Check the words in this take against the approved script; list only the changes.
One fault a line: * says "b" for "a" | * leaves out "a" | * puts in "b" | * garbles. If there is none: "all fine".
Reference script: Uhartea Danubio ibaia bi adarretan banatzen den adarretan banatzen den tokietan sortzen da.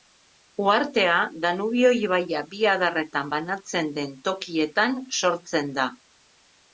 * leaves out "adarretan banatzen den"